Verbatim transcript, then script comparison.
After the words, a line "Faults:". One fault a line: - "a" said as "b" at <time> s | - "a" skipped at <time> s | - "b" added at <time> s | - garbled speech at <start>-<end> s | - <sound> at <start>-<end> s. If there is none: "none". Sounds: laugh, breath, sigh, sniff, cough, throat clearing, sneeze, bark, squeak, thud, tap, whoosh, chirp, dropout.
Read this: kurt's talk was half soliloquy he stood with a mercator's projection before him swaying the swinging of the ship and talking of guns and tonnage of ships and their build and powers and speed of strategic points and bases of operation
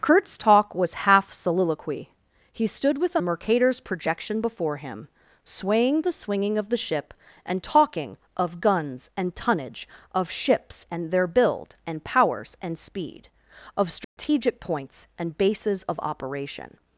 kurt's talk was half soliloquy he stood with a mercator's projection before him swaying the swinging of the ship and talking of guns and tonnage of ships and their build and powers and speed of strategic points and bases of operation
Faults:
- dropout at 14.0-14.2 s